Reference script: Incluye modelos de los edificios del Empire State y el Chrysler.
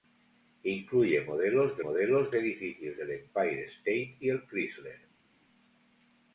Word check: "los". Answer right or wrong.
wrong